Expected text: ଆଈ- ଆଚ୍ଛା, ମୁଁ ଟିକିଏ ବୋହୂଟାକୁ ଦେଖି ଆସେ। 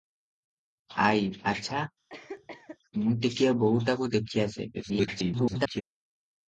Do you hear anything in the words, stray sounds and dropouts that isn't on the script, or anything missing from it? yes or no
yes